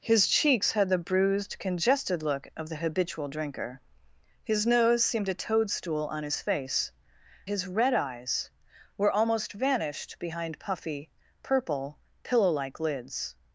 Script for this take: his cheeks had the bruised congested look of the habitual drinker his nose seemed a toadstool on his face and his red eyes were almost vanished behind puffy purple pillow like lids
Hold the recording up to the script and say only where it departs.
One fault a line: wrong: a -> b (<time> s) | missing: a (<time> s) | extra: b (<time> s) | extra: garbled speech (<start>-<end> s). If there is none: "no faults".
missing: and (6.9 s)